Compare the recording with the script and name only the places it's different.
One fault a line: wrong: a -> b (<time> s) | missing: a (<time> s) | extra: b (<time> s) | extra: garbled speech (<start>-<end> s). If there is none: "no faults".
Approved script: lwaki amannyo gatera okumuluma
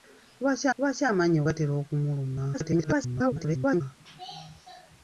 extra: lwaki (0.8 s)
extra: garbled speech (2.5-3.8 s)